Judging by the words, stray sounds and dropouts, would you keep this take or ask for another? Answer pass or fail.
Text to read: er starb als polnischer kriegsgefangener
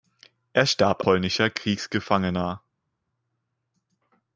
fail